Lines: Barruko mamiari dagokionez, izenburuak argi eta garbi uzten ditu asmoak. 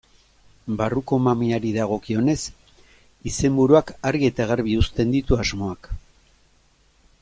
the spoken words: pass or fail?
pass